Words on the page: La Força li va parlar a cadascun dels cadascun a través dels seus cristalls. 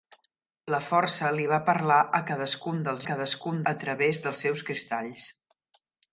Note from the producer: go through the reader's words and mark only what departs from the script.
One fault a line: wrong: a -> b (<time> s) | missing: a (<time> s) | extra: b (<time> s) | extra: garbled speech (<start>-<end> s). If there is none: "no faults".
no faults